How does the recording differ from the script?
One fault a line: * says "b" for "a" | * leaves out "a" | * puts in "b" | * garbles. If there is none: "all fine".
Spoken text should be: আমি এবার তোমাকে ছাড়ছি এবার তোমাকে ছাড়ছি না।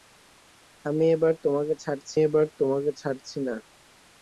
all fine